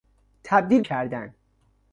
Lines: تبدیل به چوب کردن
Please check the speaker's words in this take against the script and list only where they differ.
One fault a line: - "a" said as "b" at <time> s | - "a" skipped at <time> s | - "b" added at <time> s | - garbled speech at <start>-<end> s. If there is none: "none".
- "به چوب" skipped at 0.8 s